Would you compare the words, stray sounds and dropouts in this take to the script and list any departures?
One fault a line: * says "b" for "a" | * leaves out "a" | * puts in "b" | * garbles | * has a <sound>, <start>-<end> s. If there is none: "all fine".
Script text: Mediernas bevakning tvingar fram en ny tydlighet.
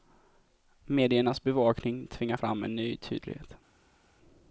all fine